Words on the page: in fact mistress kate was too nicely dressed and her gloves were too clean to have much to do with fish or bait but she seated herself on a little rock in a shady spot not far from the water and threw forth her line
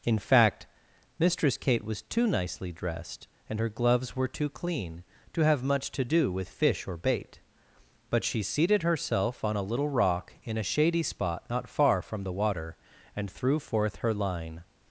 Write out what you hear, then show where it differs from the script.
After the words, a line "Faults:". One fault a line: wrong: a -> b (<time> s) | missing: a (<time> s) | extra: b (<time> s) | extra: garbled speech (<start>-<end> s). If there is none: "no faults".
in fact mistress kate was too nicely dressed and her gloves were too clean to have much to do with fish or bait but she seated herself on a little rock in a shady spot not far from the water and threw forth her line
Faults:
no faults